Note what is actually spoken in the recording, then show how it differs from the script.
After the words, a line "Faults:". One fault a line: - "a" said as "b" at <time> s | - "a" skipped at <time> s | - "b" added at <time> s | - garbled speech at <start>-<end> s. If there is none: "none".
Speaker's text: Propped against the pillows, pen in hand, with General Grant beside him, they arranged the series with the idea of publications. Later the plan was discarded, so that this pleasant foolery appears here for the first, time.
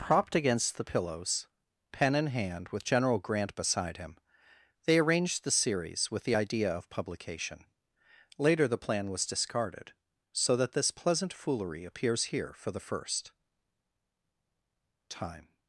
Propped against the pillows, pen in hand, with General Grant beside him, they arranged the series with the idea of publication. Later the plan was discarded, so that this pleasant foolery appears here for the first, time.
Faults:
- "publications" said as "publication" at 6.9 s